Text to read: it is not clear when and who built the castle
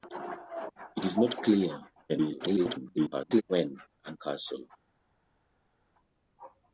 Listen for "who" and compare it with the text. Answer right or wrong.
wrong